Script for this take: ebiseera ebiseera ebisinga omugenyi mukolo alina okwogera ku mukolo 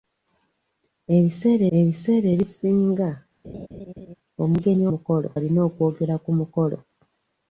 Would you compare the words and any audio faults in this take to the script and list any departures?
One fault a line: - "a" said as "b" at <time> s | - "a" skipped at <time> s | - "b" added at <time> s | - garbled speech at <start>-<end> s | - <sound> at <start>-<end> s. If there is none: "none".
- laugh at 3.4-4.1 s